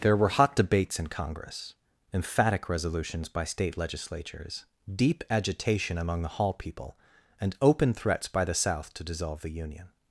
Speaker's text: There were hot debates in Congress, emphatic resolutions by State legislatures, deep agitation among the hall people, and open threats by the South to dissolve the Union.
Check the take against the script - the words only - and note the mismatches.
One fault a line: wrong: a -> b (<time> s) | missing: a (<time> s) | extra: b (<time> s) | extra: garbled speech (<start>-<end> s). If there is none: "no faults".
no faults